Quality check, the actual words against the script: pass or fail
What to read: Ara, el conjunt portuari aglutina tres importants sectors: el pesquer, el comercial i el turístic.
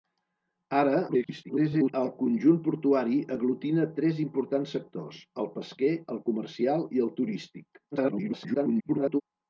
fail